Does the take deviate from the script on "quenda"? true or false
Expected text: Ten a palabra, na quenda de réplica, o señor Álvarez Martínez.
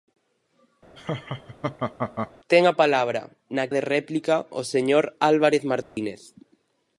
true